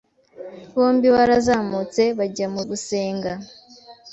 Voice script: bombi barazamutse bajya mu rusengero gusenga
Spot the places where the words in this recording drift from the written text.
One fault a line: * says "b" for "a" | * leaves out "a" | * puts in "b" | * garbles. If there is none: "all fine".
* leaves out "rusengero"